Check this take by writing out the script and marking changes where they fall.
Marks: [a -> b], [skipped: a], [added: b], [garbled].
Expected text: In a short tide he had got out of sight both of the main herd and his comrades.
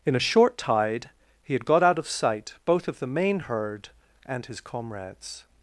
In a short tide he had got out of sight both of the main herd and his comrades.